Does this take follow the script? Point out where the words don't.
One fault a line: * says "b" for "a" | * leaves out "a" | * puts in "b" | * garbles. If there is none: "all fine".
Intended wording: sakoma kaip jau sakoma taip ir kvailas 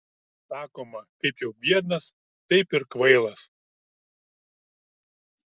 * says "biednas" for "sakoma"